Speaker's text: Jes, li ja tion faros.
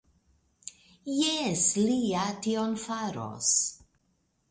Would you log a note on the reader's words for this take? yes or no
no